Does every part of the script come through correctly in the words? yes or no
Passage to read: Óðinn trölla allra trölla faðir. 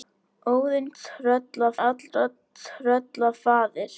yes